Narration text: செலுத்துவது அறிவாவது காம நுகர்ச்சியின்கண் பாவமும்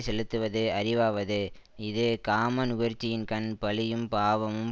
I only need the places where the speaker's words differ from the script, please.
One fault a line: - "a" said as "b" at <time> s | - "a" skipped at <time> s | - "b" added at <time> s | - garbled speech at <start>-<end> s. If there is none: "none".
- "இது" added at 1.8 s
- "பழியும்" added at 3.6 s